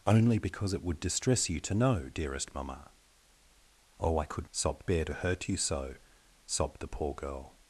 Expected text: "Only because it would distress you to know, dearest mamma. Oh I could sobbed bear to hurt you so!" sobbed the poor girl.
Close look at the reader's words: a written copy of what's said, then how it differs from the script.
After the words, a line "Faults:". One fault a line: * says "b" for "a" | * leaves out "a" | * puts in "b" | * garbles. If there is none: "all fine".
"Only because it would distress you to know, dearest mamma. Oh I could sobbed bear to hurt you so!" sobbed the poor girl.
Faults:
all fine